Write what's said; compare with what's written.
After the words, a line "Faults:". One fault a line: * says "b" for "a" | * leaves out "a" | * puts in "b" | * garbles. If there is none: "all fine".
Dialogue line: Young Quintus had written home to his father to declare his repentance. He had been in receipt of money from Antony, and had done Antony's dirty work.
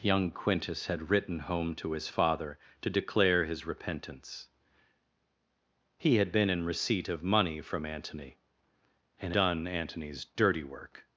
Young Quintus had written home to his father to declare his repentance. He had been in receipt of money from Antony, and done Antony's dirty work.
Faults:
* leaves out "had"